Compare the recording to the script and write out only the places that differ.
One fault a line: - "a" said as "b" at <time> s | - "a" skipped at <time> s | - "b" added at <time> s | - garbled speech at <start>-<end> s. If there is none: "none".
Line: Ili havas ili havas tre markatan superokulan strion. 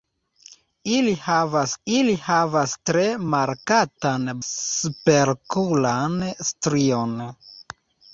none